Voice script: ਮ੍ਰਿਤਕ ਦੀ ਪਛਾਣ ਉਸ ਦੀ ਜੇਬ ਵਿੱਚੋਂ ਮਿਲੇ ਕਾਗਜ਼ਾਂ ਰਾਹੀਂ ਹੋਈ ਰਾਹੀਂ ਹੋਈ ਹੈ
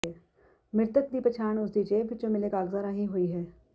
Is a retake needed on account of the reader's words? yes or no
yes